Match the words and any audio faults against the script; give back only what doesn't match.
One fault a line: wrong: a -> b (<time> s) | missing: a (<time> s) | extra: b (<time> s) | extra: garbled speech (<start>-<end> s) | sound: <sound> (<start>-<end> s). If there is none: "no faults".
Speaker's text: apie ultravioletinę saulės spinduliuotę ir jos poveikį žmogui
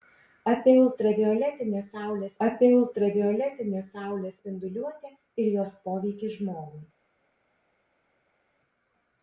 extra: apie ultravioletinę saulės (2.5 s)